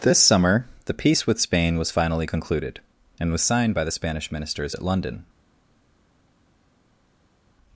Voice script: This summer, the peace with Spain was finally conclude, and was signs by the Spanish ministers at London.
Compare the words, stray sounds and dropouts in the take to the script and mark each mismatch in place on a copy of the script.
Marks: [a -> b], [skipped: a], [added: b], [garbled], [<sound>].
This summer, the peace with Spain was finally [conclude, -> concluded] and was [signs -> signed] by the Spanish ministers at London.